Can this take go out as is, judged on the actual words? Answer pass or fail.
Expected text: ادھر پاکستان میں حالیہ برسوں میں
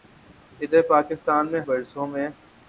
fail